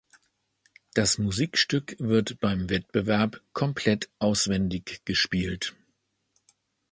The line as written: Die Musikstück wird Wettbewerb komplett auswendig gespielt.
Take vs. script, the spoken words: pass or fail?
fail